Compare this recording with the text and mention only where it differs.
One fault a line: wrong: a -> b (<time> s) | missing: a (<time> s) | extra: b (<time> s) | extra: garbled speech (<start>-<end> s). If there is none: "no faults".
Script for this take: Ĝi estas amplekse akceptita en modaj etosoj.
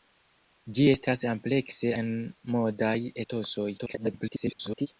missing: akceptita (1.9 s)
extra: garbled speech (3.8-4.9 s)